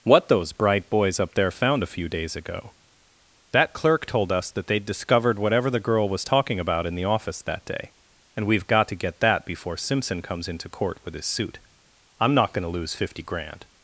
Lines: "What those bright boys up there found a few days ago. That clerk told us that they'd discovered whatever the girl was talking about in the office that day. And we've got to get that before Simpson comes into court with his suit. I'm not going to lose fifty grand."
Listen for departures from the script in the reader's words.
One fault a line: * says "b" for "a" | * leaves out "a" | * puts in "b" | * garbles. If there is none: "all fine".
all fine